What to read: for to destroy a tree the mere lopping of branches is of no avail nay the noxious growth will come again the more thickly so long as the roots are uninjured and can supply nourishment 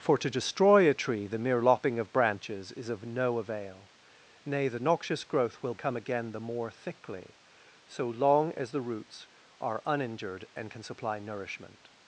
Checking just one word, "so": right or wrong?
right